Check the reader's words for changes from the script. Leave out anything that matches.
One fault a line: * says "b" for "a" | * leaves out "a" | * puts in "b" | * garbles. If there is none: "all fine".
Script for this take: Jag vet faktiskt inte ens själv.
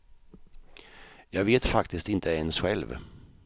all fine